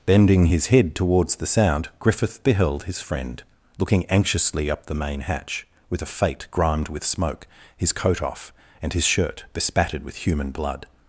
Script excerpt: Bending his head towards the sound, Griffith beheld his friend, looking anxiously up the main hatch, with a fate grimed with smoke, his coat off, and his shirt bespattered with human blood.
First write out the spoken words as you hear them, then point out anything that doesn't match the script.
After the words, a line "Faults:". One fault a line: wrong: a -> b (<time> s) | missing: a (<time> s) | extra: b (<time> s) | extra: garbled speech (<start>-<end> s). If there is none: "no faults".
Bending his head towards the sound, Griffith beheld his friend, looking anxiously up the main hatch, with a fate grimed with smoke, his coat off, and his shirt bespattered with human blood.
Faults:
no faults